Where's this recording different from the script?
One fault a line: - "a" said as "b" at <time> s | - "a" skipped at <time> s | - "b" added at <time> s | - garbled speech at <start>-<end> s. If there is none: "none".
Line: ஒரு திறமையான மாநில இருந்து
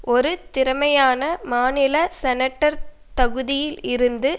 - "செனட்டர் தகுதியில்" added at 2.2 s